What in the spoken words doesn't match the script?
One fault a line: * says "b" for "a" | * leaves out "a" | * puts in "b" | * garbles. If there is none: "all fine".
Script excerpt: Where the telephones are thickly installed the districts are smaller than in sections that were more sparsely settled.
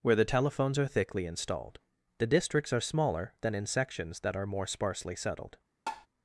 * says "are" for "were"